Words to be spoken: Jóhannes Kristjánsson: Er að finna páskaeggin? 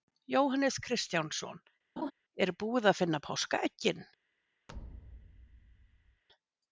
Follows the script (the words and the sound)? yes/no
no